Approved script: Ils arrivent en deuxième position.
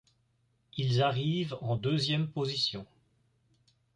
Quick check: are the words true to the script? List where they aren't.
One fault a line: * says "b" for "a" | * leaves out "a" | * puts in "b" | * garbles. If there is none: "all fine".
all fine